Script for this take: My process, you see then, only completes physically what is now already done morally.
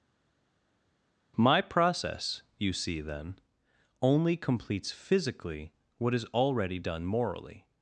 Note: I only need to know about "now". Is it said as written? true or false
false